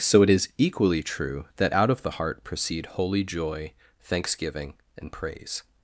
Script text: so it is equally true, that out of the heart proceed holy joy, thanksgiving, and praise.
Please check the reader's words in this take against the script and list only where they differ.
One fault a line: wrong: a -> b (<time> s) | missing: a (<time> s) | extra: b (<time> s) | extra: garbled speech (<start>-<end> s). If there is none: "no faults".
no faults